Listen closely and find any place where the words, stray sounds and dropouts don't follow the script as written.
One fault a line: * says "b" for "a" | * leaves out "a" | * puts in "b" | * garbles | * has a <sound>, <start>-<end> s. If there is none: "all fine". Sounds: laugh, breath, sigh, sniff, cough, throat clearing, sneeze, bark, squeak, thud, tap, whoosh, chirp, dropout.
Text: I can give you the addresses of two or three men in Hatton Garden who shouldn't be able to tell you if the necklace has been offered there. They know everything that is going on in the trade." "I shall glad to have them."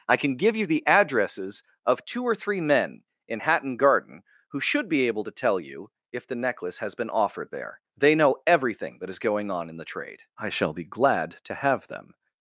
* says "should" for "shouldn't"
* puts in "be"